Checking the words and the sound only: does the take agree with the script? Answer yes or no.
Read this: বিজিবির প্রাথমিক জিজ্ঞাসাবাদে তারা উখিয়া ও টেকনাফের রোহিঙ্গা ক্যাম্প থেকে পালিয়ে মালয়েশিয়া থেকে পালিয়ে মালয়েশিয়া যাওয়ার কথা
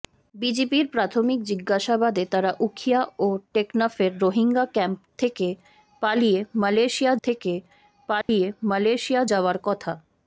no